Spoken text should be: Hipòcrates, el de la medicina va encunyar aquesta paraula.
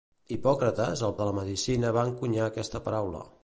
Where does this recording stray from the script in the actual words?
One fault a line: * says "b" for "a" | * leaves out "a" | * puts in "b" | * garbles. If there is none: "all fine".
all fine